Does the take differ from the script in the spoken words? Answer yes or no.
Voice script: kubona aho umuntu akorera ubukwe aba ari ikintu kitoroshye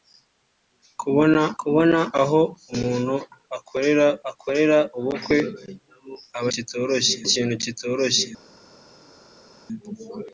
yes